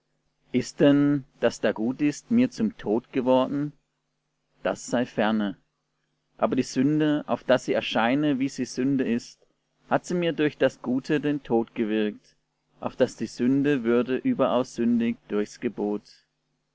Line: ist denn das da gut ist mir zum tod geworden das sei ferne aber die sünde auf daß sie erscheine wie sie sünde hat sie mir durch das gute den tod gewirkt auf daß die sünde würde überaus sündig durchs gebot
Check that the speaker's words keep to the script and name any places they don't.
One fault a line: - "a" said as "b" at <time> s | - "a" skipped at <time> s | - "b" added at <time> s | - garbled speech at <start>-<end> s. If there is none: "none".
- "ist" added at 9.0 s